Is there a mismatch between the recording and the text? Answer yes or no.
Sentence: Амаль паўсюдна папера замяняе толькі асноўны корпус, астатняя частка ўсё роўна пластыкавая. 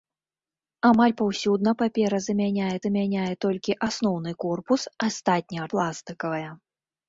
yes